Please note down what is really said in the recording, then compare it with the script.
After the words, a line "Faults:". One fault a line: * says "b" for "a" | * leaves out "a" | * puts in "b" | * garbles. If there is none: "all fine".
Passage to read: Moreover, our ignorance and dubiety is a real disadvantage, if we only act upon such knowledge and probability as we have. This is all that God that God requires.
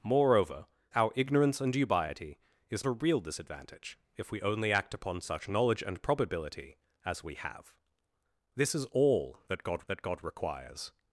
Moreover, our ignorance and dubiety is a real disadvantage, if we only act upon such knowledge and probability as we have. This is all that God that God requires.
Faults:
all fine